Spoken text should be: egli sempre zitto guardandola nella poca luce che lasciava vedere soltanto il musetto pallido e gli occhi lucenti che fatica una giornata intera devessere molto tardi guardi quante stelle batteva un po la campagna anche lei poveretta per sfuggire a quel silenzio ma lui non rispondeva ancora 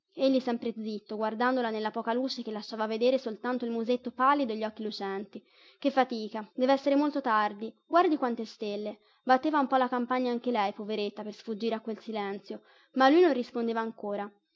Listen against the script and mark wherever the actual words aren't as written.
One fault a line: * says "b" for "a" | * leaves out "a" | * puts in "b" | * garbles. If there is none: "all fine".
* leaves out "una giornata intera"